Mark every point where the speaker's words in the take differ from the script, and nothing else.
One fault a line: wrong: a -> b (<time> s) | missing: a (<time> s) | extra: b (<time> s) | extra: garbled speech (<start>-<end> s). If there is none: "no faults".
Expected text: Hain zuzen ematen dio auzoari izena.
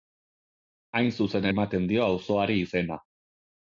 no faults